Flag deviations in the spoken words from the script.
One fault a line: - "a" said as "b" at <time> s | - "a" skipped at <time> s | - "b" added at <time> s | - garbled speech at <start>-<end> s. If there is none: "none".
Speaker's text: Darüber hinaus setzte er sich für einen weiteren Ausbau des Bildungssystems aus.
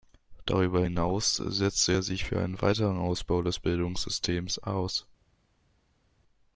none